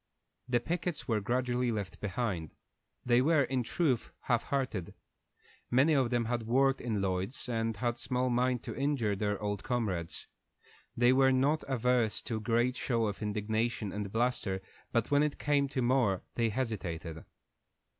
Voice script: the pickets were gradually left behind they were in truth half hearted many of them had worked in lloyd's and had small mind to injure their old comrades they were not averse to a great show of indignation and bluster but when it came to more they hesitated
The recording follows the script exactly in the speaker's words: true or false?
true